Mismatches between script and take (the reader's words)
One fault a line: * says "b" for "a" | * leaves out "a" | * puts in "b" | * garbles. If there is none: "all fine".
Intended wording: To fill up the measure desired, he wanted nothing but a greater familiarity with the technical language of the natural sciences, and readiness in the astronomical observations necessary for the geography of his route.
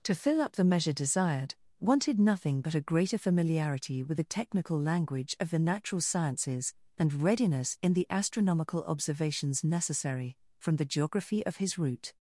* leaves out "he"
* says "from" for "for"